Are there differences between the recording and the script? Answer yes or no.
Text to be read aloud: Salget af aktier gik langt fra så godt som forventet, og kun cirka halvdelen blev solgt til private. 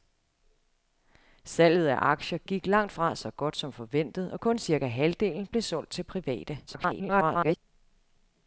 yes